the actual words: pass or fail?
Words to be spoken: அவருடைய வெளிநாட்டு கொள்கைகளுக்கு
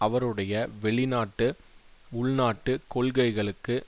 fail